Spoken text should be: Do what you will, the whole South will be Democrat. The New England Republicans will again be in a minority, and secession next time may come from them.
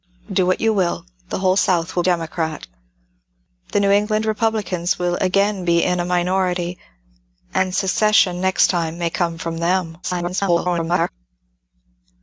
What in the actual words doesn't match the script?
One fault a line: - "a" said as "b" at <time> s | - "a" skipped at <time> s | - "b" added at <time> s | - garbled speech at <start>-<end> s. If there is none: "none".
- "be" skipped at 2.0 s
- garbled speech at 10.0-11.1 s